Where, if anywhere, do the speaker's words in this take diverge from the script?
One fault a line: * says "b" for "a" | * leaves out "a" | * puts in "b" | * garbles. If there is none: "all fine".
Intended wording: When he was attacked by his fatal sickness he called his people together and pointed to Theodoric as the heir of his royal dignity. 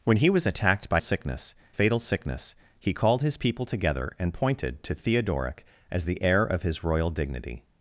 * says "sickness" for "his"